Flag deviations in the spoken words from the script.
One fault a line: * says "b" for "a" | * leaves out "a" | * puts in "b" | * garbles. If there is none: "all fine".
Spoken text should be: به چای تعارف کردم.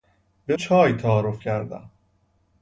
all fine